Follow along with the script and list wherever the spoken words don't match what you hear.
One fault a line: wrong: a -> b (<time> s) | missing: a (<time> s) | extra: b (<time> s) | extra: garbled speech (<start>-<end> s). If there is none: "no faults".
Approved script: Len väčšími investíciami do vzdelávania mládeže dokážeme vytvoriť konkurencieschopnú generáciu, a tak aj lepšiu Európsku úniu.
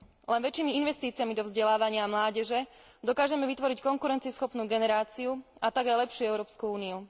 no faults